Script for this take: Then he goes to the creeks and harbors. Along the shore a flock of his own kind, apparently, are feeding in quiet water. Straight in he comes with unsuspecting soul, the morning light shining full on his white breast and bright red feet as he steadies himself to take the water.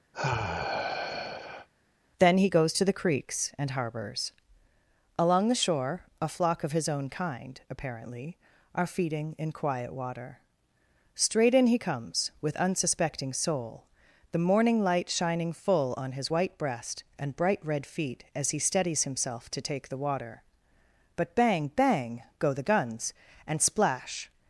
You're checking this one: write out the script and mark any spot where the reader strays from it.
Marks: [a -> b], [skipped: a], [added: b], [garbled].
Then he goes to the creeks and harbors. Along the shore a flock of his own kind, apparently, are feeding in quiet water. Straight in he comes with unsuspecting soul, the morning light shining full on his white breast and bright red feet as he steadies himself to take the water. [added: But bang bang go the guns and splash]